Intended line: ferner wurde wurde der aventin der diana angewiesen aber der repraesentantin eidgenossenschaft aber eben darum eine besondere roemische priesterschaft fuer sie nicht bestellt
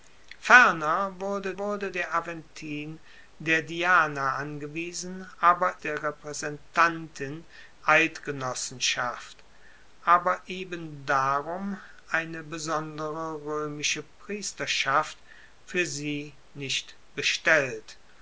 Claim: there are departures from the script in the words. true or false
false